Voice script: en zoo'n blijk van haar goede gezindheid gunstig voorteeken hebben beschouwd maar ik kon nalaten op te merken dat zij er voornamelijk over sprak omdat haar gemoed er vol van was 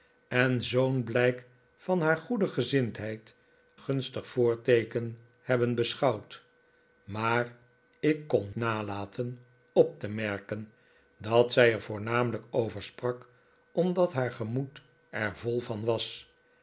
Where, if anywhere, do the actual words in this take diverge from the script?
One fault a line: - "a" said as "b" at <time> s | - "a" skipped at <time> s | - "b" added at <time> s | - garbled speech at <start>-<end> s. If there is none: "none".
none